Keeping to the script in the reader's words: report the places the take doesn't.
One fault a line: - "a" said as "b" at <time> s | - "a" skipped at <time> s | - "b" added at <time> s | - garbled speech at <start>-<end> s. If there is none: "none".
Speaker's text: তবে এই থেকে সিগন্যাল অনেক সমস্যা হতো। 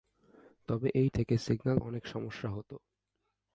none